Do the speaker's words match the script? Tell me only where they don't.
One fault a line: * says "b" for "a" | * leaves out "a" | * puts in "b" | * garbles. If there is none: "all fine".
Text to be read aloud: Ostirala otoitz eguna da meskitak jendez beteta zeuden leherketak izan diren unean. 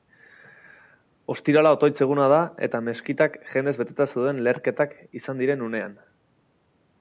* puts in "eta"